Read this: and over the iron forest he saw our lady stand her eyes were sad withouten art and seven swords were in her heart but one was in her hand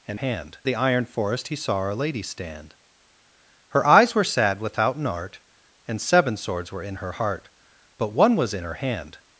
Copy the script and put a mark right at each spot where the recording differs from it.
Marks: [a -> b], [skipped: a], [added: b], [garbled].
and [over -> hand] the iron forest he saw our lady stand her eyes were sad withouten art and seven swords were in her heart but one was in her hand